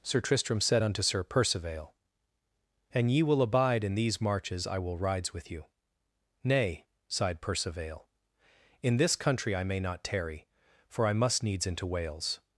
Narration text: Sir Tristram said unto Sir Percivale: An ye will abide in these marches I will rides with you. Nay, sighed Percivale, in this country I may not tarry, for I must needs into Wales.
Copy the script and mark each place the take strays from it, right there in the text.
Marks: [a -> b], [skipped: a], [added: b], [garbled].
Sir Tristram said unto Sir Percivale: An ye will abide in these marches I will rides with you. Nay, sighed Percivale, in this country I may not tarry, for I must needs into Wales.